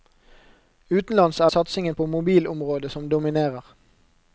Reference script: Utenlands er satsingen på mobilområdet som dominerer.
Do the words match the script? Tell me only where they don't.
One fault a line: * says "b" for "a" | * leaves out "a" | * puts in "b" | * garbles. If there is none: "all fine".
all fine